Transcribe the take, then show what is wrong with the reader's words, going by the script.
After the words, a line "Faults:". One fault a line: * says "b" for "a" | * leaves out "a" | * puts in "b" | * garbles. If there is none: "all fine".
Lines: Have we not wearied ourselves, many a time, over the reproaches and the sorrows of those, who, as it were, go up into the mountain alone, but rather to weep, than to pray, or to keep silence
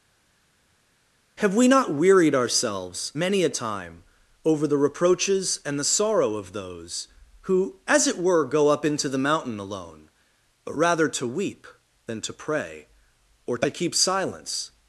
Have we not wearied ourselves, many a time, over the reproaches and the sorrow of those, who, as it were, go up into the mountain alone, but rather to weep, than to pray, or to keep silence
Faults:
* says "sorrow" for "sorrows"